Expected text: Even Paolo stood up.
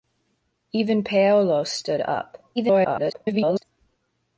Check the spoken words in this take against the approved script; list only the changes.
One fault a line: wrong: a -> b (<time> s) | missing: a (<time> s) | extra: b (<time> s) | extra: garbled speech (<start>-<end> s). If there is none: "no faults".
extra: garbled speech (2.6-3.6 s)